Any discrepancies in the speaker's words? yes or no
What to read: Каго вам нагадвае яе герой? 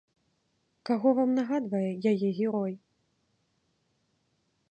no